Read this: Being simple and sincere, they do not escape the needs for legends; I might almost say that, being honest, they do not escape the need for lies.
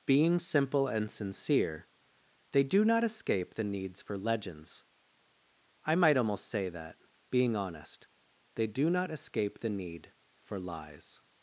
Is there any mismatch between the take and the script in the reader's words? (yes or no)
no